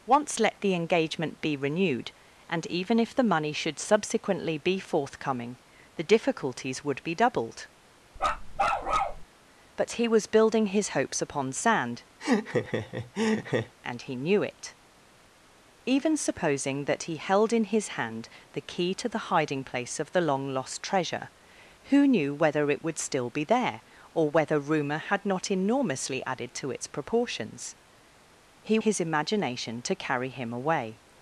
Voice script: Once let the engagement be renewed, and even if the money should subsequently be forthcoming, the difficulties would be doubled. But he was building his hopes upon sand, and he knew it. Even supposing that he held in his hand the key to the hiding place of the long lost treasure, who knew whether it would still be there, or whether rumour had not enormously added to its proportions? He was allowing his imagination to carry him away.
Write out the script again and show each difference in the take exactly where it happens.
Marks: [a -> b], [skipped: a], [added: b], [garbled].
Once let the engagement be renewed, and even if the money should subsequently be forthcoming, the difficulties would be doubled. But he was building his hopes upon sand, and he knew it. Even supposing that he held in his hand the key to the hiding place of the long lost treasure, who knew whether it would still be there, or whether rumour had not enormously added to its proportions? He [skipped: was allowing] his imagination to carry him away.